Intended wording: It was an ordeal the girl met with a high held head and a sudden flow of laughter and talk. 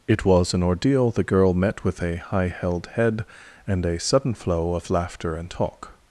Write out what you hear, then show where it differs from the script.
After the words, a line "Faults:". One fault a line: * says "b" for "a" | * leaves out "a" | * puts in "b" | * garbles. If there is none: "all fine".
It was an ordeal the girl met with a high held head and a sudden flow of laughter and talk.
Faults:
all fine